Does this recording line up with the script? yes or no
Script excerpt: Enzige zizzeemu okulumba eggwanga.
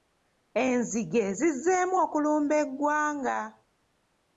yes